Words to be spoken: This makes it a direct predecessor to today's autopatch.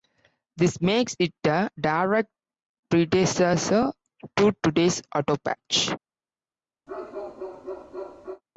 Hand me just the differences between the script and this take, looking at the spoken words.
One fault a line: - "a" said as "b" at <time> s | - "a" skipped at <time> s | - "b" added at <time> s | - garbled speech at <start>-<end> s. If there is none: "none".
none